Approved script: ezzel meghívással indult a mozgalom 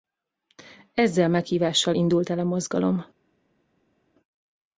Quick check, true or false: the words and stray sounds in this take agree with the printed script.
false